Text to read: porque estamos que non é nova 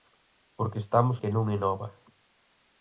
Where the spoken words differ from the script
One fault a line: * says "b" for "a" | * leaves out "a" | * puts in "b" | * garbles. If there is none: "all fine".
all fine